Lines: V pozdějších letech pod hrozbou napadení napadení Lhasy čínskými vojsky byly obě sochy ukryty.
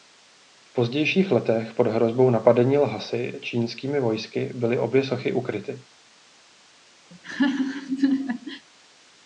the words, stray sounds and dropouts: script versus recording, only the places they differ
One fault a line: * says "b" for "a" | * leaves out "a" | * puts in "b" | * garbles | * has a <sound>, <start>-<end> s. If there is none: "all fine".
* leaves out "napadení"
* has a laugh, 7.1-8.7 s